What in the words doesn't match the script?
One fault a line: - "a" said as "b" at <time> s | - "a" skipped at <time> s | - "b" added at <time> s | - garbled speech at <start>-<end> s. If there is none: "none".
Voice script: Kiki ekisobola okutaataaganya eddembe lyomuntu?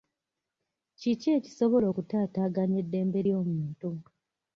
none